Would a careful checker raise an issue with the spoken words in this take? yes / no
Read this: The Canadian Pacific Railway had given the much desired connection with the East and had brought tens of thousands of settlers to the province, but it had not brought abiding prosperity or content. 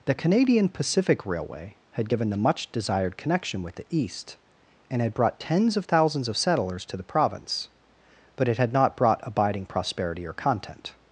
no